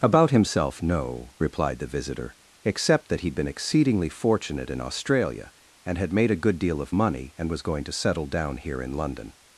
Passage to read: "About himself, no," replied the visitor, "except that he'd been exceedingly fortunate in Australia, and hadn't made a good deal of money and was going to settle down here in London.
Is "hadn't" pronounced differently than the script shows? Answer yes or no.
yes